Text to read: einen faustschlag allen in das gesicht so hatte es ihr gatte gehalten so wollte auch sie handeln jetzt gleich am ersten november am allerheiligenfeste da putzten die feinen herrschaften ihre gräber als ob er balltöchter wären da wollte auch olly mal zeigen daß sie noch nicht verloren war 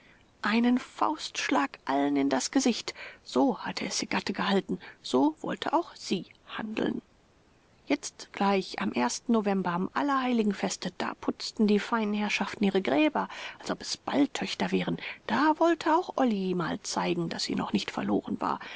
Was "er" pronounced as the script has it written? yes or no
no